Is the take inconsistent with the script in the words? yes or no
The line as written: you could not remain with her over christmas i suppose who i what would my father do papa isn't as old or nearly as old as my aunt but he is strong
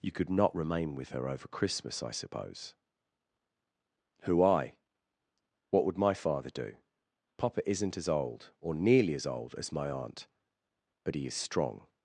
no